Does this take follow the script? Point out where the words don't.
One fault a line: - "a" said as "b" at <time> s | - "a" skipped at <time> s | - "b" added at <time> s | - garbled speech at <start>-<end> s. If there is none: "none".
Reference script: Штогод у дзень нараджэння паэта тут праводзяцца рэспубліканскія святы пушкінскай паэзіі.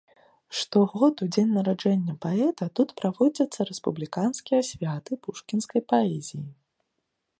none